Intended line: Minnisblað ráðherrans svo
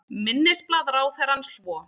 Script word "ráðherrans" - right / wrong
right